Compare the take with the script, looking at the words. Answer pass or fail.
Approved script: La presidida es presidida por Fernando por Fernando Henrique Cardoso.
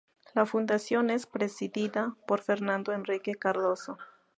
fail